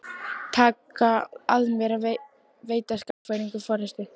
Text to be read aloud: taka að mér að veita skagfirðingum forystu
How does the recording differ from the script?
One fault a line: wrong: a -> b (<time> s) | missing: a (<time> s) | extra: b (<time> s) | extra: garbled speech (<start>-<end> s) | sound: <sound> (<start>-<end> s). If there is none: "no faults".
sound: dropout (3.1-3.3 s)